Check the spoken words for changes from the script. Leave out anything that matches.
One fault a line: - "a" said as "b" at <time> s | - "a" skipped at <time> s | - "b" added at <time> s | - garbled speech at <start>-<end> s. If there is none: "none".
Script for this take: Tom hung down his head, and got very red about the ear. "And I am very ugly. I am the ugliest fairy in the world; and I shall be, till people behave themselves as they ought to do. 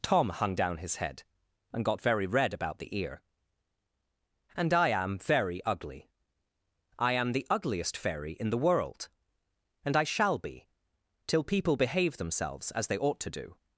none